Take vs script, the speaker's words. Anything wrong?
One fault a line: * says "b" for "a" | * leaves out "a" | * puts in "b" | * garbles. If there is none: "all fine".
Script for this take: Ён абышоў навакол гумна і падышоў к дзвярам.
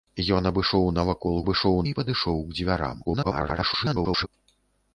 * says "абышоў" for "гумна"
* garbles